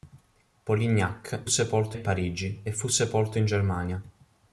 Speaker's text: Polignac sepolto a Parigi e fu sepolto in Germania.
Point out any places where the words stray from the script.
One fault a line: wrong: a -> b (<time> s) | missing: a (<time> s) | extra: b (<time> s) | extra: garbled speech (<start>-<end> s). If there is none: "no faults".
no faults